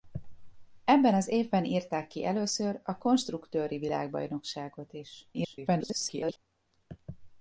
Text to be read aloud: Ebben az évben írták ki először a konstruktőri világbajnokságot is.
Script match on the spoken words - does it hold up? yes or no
no